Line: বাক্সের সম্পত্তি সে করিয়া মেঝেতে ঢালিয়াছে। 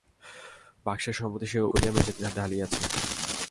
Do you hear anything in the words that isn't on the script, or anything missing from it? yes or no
no